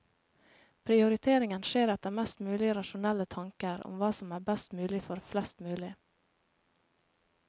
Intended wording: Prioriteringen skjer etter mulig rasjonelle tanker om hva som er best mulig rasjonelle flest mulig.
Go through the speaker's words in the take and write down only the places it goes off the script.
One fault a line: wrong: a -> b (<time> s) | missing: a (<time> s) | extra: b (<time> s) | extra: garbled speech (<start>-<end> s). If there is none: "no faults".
extra: mest (2.2 s)
wrong: rasjonelle -> for (5.1 s)